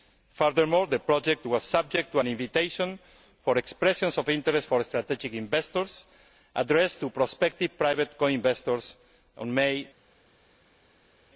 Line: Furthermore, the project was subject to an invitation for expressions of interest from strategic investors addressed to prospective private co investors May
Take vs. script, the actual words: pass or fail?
fail